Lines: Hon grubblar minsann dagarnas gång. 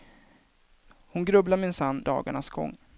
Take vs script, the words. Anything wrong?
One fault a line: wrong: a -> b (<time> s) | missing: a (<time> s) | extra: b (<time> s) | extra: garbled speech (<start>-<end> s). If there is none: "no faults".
no faults